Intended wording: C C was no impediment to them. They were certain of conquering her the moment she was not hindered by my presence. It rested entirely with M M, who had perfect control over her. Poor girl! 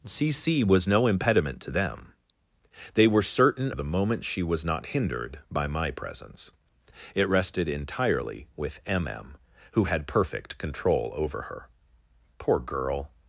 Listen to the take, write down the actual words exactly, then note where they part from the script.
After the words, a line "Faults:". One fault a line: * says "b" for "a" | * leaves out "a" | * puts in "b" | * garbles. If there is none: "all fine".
C C was no impediment to them. They were certain the moment she was not hindered by my presence. It rested entirely with M M, who had perfect control over her. Poor girl!
Faults:
* leaves out "of conquering her"